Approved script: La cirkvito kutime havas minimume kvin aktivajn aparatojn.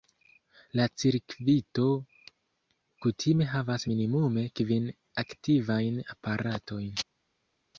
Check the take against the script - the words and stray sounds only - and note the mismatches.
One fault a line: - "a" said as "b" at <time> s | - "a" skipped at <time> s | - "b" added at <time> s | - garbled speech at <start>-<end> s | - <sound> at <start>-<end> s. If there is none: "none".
none